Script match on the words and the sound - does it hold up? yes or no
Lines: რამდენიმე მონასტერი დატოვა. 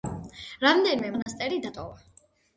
no